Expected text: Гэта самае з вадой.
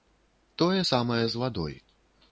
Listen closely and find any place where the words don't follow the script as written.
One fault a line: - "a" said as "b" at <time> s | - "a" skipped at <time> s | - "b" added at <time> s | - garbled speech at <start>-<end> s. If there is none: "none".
- "Гэта" said as "Тое" at 0.6 s